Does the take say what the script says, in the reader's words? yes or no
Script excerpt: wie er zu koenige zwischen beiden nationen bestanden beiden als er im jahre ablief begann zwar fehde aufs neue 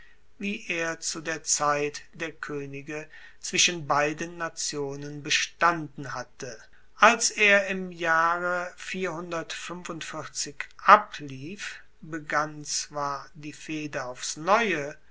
no